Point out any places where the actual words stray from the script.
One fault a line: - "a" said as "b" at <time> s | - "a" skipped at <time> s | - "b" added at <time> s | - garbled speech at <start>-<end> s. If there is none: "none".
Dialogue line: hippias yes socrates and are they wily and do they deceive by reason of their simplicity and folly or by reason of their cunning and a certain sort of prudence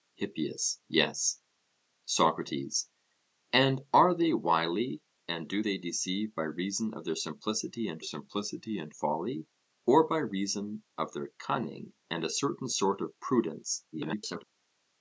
- "simplicity and" added at 8.0 s
- garbled speech at 13.9-14.4 s